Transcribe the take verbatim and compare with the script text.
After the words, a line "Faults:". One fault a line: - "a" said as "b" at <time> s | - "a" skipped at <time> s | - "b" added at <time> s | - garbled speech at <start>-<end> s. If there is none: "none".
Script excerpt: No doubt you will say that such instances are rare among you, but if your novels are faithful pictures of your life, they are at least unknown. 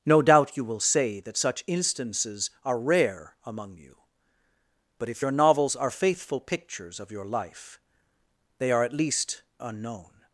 No doubt you will say that such instances are rare among you, but if your novels are faithful pictures of your life, they are at least unknown.
Faults:
none